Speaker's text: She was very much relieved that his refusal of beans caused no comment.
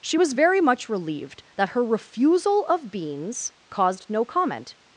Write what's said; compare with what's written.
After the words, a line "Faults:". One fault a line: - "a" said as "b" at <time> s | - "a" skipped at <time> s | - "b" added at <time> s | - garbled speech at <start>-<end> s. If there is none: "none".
She was very much relieved that her refusal of beans caused no comment.
Faults:
- "his" said as "her" at 1.7 s